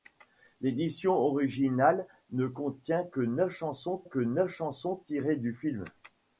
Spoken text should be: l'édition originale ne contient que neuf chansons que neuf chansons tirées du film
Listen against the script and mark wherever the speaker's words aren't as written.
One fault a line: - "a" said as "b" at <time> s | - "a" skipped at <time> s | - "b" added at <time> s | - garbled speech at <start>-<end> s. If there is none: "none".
none